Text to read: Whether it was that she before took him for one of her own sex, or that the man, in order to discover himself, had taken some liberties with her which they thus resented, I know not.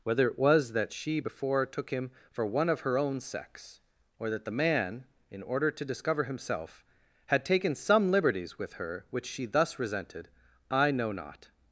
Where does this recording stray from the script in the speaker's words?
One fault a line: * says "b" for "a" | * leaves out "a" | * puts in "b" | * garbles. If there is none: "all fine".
* says "she" for "they"